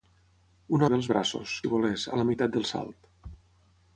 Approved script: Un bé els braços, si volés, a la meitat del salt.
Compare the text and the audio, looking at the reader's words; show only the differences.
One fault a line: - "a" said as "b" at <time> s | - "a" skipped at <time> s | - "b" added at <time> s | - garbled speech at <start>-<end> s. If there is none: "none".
none